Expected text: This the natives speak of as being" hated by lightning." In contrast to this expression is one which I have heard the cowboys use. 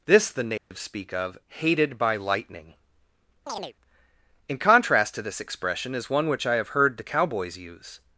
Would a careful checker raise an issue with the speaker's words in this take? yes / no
yes